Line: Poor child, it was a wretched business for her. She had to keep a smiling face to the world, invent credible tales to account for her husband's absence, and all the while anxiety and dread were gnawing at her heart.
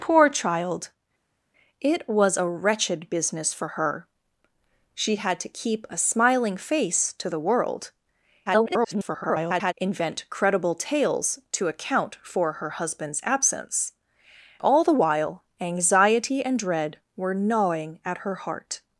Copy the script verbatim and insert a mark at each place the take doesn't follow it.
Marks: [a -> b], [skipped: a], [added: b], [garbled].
Poor child, it was a wretched business for her. She had to keep a smiling face to the world, [garbled] invent credible tales to account for her husband's absence, [skipped: and] all the while anxiety and dread were gnawing at her heart.